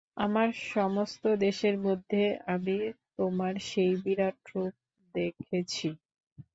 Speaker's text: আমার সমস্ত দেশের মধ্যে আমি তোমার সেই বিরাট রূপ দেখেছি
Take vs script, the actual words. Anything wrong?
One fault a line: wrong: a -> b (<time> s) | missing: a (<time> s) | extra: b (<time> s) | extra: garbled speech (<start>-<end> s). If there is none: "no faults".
no faults